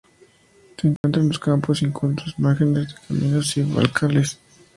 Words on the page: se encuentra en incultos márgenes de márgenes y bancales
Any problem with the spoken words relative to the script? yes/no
yes